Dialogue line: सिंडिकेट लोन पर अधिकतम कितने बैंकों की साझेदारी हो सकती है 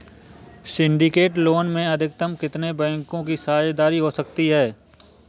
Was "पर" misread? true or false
true